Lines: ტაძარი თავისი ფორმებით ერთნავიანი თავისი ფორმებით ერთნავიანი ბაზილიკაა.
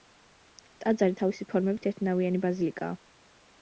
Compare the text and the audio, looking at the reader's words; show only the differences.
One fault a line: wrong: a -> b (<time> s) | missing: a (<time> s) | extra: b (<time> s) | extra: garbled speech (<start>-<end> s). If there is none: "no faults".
missing: თავისი ფორმებით ერთნავიანი (2.5 s)